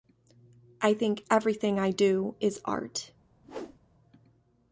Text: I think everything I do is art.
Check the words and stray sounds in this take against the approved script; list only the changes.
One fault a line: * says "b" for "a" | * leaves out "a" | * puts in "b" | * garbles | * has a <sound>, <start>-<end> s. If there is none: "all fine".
* has a whoosh, 3.4-3.8 s